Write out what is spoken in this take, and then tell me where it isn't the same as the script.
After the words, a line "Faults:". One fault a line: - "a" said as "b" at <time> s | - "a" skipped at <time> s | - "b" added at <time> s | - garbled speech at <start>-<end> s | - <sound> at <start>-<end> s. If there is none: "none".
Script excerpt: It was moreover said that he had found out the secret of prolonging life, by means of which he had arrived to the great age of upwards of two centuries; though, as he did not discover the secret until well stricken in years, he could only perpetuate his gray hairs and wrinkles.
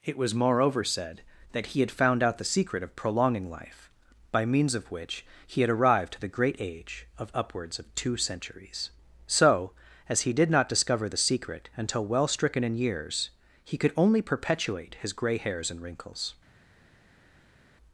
It was moreover said that he had found out the secret of prolonging life, by means of which he had arrived to the great age of upwards of two centuries; so, as he did not discover the secret until well stricken in years, he could only perpetuate his gray hairs and wrinkles.
Faults:
- "though" said as "so" at 9.3 s